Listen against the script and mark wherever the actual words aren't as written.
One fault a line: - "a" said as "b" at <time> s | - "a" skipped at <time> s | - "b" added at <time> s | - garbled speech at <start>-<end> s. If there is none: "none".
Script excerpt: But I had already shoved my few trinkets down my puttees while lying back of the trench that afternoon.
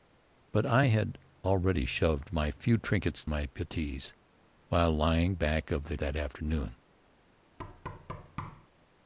- "down" skipped at 3.2 s
- "trench" skipped at 6.0 s